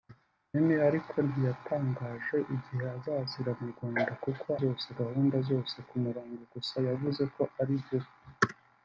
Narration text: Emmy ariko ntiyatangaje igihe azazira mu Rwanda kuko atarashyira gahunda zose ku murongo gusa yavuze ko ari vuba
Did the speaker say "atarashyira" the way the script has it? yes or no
no